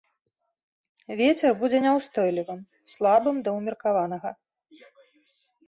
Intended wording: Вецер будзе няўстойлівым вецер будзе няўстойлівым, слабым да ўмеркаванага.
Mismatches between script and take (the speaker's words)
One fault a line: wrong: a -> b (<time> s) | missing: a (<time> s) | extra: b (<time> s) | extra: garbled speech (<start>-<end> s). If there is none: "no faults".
missing: вецер будзе няўстойлівым (2.6 s)